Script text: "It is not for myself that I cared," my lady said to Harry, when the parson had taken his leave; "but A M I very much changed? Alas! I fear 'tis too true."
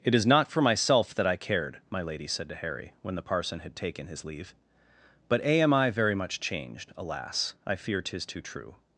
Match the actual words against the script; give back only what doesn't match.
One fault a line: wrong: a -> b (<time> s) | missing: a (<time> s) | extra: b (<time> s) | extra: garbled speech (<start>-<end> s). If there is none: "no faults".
no faults